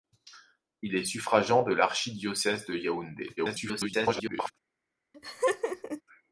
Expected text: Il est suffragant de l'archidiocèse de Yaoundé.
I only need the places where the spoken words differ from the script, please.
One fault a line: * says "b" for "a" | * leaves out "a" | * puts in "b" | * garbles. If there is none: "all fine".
* garbles